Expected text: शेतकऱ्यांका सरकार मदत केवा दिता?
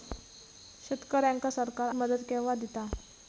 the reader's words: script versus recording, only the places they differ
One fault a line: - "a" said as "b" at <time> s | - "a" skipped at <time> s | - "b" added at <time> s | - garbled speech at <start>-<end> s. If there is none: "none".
none